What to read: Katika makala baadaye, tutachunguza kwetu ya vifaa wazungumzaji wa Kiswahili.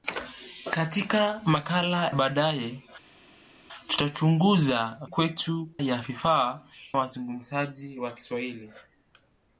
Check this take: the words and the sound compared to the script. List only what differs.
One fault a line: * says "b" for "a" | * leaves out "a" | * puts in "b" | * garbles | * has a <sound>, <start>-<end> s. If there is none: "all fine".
all fine